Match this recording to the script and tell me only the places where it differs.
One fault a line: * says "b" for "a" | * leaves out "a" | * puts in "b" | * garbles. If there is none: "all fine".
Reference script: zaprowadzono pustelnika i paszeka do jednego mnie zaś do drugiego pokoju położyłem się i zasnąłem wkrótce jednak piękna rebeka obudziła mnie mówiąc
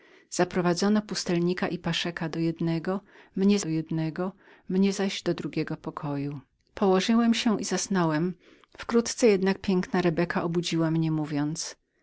* puts in "do jednego mnie"